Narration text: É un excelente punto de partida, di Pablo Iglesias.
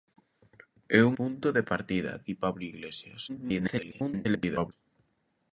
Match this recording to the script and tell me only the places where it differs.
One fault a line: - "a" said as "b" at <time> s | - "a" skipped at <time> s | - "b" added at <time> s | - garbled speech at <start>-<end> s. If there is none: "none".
- "excelente" skipped at 1.1 s
- garbled speech at 3.3-4.7 s